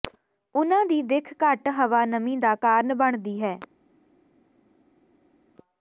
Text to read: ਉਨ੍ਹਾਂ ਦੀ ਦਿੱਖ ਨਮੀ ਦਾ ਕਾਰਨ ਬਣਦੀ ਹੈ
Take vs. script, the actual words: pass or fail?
fail